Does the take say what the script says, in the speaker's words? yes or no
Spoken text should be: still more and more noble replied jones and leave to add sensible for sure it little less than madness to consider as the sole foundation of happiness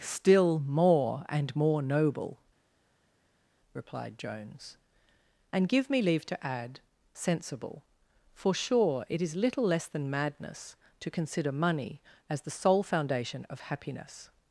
no